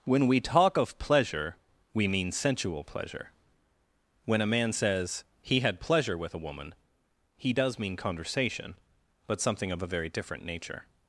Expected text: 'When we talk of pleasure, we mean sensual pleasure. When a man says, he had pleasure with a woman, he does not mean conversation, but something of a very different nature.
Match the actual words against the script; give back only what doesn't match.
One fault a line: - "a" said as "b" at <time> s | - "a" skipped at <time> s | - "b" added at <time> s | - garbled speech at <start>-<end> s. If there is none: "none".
- "not" skipped at 7.8 s